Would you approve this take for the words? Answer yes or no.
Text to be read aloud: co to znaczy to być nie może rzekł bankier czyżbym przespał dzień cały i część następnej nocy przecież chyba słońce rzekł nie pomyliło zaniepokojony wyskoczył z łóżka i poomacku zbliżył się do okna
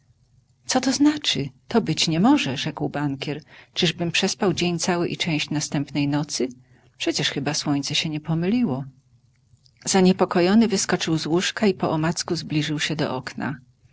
no